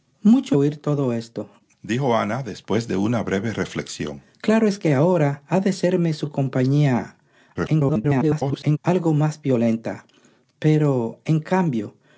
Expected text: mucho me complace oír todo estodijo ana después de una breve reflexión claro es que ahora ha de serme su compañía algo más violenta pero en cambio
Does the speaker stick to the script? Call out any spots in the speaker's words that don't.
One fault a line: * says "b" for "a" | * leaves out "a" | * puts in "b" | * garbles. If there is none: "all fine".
* leaves out "me complace"
* garbles